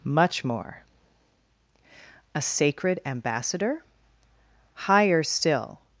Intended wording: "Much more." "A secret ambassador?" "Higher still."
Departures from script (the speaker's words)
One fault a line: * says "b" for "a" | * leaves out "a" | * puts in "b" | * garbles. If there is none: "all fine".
* says "sacred" for "secret"